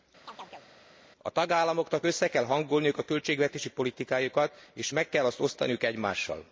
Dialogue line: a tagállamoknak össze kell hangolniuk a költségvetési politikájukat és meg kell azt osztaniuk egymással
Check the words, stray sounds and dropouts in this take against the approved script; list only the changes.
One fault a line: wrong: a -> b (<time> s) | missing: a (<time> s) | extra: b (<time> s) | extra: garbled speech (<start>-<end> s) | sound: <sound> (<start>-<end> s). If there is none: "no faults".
sound: chirp (0.2-0.7 s)